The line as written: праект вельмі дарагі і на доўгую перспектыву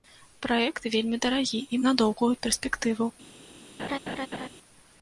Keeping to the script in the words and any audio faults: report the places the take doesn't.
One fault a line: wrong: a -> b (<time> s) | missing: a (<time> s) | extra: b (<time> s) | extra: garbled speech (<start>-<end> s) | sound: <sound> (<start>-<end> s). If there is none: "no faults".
sound: laugh (3.8-4.5 s)